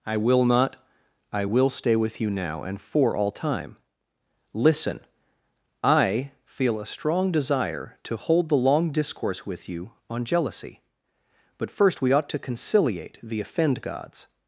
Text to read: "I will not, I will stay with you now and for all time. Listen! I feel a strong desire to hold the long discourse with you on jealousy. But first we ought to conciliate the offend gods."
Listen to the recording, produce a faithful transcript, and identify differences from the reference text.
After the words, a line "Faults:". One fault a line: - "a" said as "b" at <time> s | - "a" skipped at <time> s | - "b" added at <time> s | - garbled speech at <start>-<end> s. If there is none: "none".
"I will not, I will stay with you now and for all time. Listen! I feel a strong desire to hold the long discourse with you on jealousy. But first we ought to conciliate the offend gods."
Faults:
none